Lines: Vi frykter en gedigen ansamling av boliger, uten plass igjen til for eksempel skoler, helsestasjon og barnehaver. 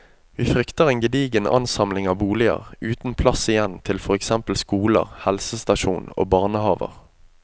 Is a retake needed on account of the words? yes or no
no